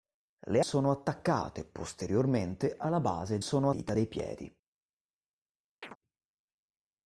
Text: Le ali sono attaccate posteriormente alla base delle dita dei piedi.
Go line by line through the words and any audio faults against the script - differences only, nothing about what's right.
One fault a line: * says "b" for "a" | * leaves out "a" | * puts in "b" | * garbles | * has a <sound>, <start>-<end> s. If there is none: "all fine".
* leaves out "ali"
* says "sono" for "delle"
* has a chirp, 5.8-6.0 s